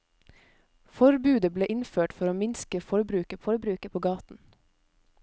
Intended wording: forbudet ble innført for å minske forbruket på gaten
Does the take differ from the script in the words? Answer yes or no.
yes